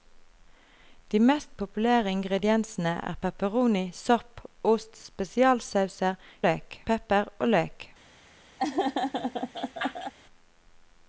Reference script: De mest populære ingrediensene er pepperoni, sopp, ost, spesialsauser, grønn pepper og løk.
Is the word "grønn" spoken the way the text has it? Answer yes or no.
no